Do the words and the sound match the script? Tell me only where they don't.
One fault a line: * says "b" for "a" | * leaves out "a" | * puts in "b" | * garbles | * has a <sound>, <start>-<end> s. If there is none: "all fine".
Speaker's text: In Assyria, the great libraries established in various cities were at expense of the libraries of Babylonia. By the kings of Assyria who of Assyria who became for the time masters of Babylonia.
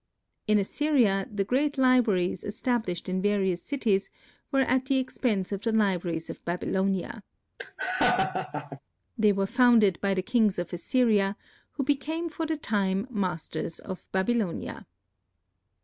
* puts in "the"
* has a laugh, 7.6-8.8 s
* puts in "They were founded"
* leaves out "of Assyria who"